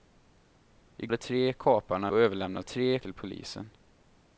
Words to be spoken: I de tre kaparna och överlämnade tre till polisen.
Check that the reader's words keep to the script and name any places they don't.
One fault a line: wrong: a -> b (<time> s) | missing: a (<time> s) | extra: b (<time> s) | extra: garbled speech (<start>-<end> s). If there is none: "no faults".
no faults